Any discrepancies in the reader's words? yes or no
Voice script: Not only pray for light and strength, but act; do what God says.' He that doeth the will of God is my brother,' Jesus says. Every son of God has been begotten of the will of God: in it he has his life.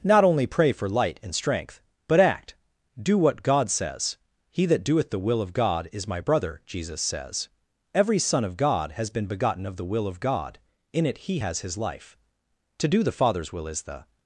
yes